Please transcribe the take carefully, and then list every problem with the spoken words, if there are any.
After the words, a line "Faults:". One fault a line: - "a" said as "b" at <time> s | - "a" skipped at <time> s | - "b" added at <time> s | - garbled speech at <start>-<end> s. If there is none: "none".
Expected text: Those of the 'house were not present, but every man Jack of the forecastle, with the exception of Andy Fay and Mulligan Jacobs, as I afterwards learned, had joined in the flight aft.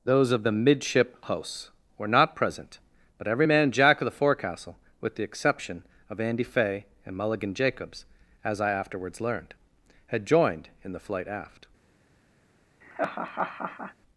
Those of the 'midship house were not present, but every man Jack of the forecastle, with the exception of Andy Fay and Mulligan Jacobs, as I afterwards learned, had joined in the flight aft.
Faults:
- "midship" added at 0.5 s